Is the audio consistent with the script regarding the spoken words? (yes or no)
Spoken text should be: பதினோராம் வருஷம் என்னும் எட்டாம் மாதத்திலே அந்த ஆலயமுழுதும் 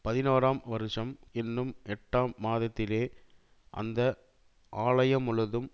yes